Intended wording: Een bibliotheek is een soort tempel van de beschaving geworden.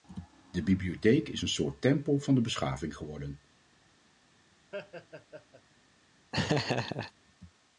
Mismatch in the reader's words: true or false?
true